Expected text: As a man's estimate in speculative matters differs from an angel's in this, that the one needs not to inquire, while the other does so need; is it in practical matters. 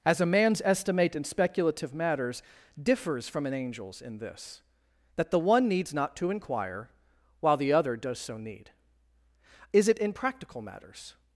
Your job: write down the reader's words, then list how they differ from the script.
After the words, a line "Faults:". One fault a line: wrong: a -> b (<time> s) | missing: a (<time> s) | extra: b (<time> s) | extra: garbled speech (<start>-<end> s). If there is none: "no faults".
As a man's estimate in speculative matters differs from an angel's in this, that the one needs not to inquire, while the other does so need; is it in practical matters.
Faults:
no faults